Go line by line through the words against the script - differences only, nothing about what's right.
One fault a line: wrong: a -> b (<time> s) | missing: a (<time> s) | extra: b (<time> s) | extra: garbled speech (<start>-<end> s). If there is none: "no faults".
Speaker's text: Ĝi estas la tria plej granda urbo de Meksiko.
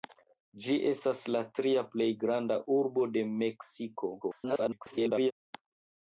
extra: garbled speech (4.2-5.3 s)